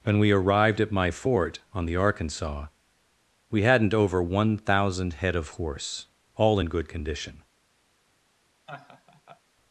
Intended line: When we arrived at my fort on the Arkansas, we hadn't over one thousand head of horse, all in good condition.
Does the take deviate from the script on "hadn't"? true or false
false